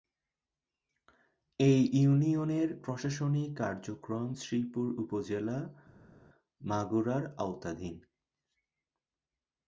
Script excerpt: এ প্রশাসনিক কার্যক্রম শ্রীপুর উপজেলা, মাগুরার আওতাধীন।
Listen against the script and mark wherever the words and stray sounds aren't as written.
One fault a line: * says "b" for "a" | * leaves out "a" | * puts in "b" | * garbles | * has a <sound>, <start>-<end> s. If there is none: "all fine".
* puts in "ইউনিয়নের"